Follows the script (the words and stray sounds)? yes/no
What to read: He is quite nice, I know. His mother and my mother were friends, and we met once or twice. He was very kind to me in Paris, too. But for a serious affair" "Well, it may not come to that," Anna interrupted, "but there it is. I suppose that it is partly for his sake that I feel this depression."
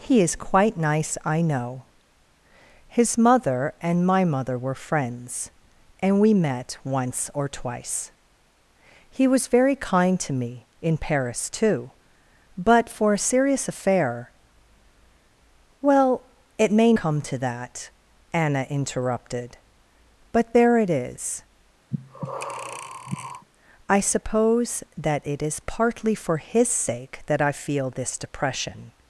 no